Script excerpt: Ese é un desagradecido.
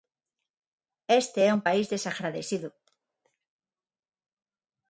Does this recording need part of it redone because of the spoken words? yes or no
yes